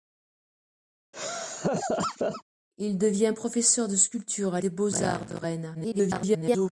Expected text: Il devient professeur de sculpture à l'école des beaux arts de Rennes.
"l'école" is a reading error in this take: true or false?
true